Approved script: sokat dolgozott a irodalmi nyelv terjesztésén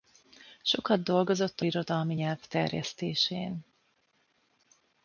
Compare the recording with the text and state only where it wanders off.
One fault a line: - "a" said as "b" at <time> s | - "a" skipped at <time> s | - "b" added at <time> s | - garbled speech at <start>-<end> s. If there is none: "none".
none